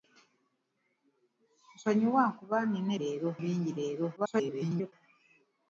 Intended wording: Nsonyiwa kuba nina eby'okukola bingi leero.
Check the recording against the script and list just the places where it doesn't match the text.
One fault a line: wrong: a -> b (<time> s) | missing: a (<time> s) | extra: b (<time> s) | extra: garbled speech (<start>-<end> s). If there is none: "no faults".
wrong: eby'okukola -> leero (3.0 s)
extra: garbled speech (4.2-4.9 s)